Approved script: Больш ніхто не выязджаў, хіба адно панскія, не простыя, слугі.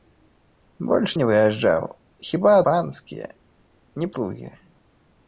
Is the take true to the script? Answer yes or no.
no